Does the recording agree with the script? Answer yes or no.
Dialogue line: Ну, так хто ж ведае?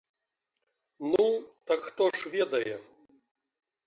yes